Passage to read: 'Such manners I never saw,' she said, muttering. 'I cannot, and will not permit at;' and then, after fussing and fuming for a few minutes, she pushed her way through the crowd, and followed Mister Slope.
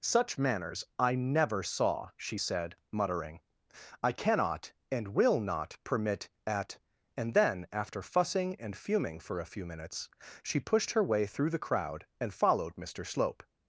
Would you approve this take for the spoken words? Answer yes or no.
yes